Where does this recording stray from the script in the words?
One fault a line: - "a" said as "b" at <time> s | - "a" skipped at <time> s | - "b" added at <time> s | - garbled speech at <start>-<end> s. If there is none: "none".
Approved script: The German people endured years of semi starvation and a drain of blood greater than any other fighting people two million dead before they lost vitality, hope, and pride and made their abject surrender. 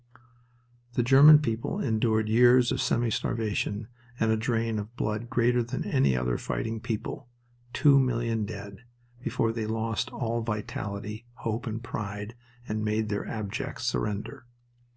- "all" added at 10.1 s